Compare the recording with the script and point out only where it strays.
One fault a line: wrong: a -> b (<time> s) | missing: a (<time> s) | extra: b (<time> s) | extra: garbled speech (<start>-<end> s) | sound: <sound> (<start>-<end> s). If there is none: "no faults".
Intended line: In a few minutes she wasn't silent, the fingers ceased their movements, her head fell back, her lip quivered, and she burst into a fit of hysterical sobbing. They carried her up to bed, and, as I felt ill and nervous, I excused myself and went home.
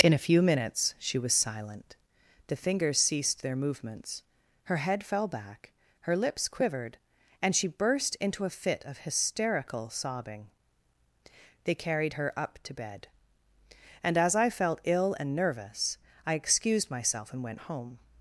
wrong: wasn't -> was (1.2 s)
wrong: lip -> lips (6.2 s)